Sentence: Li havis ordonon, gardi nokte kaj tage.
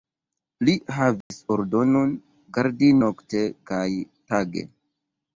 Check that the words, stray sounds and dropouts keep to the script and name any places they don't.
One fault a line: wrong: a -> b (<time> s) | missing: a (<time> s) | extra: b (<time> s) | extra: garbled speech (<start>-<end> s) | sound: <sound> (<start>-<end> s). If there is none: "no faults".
sound: dropout (1.2-1.3 s)